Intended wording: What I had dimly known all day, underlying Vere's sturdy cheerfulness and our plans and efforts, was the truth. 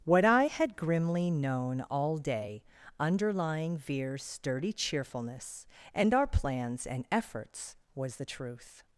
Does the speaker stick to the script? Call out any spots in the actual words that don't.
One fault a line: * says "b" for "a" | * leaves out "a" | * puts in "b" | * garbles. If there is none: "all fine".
* says "grimly" for "dimly"